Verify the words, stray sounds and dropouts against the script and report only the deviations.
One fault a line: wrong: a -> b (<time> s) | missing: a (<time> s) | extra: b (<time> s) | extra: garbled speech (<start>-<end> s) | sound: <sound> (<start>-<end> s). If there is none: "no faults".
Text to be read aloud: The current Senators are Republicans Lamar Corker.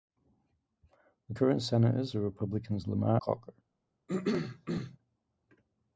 sound: throat clearing (4.1-5.0 s)